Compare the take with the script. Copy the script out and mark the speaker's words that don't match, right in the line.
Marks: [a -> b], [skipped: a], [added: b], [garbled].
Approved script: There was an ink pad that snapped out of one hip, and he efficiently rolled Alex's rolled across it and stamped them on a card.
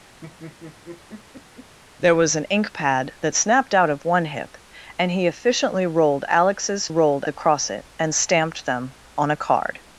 There was an ink pad that snapped out of one hip, and he efficiently rolled Alex's rolled across it and stamped them on a card.